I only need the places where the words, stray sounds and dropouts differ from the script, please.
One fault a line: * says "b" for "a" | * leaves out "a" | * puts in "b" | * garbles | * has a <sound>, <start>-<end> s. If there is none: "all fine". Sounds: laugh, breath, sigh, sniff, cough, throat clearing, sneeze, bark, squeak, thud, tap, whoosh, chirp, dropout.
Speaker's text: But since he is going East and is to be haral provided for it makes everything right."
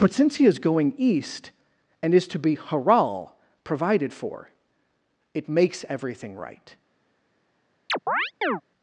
* has a chirp, 7.9-8.6 s